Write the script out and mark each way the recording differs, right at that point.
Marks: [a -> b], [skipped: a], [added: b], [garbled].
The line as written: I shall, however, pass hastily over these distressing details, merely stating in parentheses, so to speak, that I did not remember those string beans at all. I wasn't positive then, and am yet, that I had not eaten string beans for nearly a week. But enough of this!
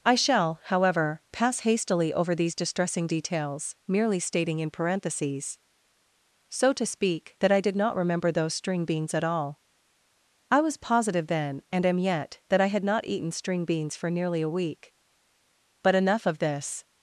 I shall, however, pass hastily over these distressing details, merely stating in parentheses, so to speak, that I did not remember those string beans at all. I [wasn't -> was] positive then, and am yet, that I had not eaten string beans for nearly a week. But enough of this!